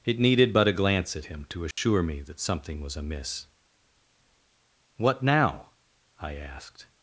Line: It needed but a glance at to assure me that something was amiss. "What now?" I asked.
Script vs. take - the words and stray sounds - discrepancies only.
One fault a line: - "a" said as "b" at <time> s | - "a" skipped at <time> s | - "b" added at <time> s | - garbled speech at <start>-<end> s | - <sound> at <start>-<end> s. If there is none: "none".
- "him" added at 1.2 s
- dropout at 1.7-1.8 s